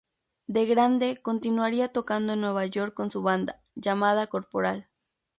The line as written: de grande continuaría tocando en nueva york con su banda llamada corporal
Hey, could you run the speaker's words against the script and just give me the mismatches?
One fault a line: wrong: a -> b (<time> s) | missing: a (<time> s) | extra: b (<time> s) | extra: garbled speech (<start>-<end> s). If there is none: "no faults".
no faults